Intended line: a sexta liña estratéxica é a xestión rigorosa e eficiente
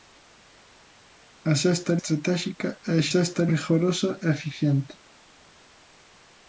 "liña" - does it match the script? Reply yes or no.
no